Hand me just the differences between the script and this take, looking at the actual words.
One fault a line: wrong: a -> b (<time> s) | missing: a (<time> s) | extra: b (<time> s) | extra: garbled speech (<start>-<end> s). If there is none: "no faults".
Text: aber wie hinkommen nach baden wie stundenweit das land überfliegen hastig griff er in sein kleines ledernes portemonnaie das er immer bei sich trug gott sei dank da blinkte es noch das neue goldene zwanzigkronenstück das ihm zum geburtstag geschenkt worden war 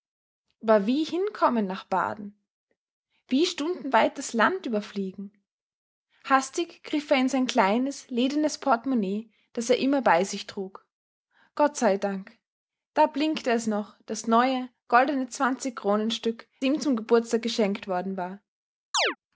missing: das (16.5 s)